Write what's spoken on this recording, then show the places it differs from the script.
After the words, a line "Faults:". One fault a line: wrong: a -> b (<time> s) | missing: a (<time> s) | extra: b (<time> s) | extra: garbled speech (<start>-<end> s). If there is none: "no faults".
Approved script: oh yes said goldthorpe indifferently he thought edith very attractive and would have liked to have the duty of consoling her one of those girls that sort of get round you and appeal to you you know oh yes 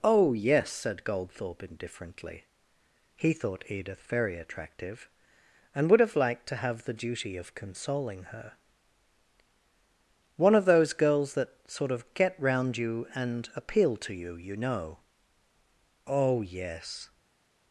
oh yes said goldthorpe indifferently he thought edith very attractive and would have liked to have the duty of consoling her one of those girls that sort of get round you and appeal to you you know oh yes
Faults:
no faults